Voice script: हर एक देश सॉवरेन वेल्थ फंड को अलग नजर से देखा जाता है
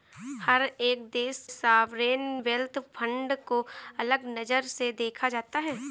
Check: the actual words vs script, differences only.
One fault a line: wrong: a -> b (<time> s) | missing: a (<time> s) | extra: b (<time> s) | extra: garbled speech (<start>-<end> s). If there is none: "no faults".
no faults